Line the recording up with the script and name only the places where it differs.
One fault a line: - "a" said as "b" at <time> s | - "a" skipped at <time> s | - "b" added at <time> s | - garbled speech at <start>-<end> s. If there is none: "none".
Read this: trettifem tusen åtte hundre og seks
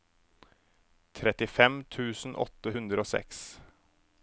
none